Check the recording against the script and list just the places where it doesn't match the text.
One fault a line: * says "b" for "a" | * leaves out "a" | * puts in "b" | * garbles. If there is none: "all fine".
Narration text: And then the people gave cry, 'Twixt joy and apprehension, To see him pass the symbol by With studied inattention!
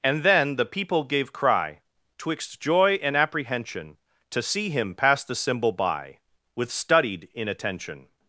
all fine